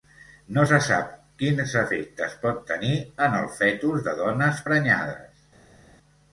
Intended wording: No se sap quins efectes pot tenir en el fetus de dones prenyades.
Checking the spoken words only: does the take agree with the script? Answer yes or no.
yes